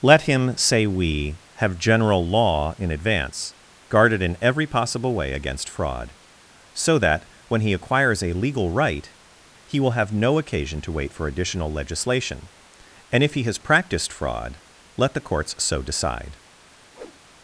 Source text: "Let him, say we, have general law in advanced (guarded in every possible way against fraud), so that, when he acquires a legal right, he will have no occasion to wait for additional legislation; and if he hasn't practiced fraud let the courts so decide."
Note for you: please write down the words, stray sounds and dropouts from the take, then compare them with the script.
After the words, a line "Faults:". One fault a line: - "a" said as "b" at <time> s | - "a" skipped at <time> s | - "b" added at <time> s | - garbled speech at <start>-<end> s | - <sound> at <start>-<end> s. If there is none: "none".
"Let him, say we, have general law in advance (guarded in every possible way against fraud), so that, when he acquires a legal right, he will have no occasion to wait for additional legislation; and if he has practiced fraud let the courts so decide."
Faults:
- "advanced" said as "advance" at 2.9 s
- "hasn't" said as "has" at 13.4 s
- whoosh at 16.9-17.2 s